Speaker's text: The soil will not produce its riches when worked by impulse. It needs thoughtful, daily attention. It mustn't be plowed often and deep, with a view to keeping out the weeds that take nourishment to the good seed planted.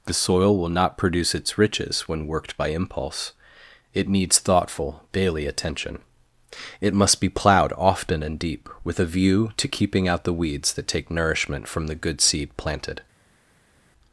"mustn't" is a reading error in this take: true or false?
true